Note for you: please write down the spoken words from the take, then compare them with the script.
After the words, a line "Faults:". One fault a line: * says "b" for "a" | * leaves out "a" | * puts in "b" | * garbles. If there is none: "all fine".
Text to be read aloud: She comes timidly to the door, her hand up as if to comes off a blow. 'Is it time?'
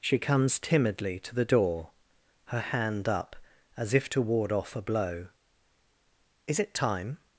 She comes timidly to the door, her hand up as if to ward off a blow. 'Is it time?'
Faults:
* says "ward" for "comes"